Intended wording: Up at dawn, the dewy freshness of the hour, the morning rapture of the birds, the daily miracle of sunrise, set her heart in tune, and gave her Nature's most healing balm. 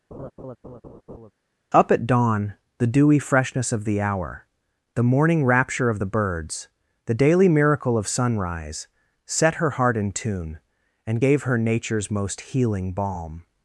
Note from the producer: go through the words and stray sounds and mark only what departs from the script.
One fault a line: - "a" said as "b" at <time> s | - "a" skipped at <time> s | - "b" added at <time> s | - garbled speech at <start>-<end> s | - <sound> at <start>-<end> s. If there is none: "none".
- laugh at 0.1-1.3 s